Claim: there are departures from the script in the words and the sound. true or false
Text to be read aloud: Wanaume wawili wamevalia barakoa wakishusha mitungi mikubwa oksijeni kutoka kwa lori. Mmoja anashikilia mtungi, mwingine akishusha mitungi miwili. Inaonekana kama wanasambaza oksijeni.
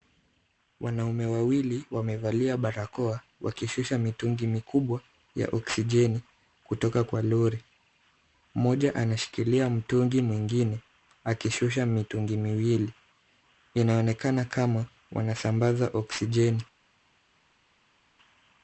true